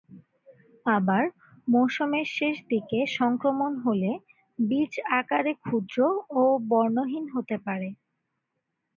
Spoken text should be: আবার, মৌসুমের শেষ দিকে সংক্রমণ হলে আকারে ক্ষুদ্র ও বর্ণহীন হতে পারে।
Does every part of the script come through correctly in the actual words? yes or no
no